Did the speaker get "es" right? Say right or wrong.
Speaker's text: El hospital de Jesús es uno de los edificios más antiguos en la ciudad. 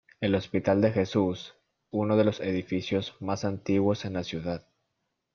wrong